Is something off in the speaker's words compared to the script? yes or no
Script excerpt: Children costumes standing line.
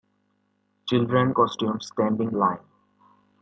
no